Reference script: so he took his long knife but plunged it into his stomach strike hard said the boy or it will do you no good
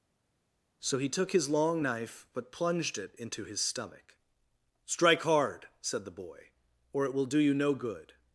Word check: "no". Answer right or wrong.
right